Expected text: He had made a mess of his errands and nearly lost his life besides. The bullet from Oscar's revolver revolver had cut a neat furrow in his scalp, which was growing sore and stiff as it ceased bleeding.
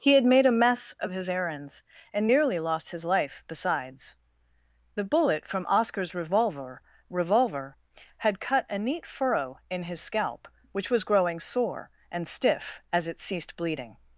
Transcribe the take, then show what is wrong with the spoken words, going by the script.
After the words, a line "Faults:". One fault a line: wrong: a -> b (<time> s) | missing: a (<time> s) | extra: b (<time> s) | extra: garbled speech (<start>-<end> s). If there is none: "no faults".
He had made a mess of his errands and nearly lost his life besides. The bullet from Oscar's revolver revolver had cut a neat furrow in his scalp, which was growing sore and stiff as it ceased bleeding.
Faults:
no faults